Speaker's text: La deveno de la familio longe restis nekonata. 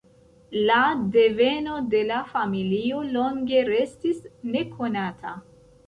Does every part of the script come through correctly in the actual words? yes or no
yes